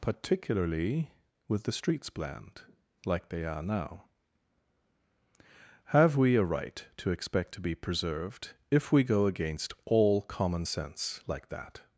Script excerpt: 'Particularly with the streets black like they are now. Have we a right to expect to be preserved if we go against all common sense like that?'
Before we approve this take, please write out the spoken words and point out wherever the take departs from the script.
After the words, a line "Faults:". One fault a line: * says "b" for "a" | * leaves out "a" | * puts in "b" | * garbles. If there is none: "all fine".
'Particularly with the streets bland like they are now. Have we a right to expect to be preserved if we go against all common sense like that?'
Faults:
* says "bland" for "black"